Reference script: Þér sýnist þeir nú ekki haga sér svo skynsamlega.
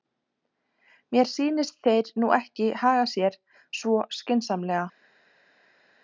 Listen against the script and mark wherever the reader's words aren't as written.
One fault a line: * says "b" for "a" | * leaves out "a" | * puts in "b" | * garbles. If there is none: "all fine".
* says "Mér" for "Þér"